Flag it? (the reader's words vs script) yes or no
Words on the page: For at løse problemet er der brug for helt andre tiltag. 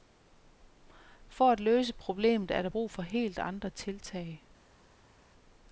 no